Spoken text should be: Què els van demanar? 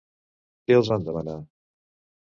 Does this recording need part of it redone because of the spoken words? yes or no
no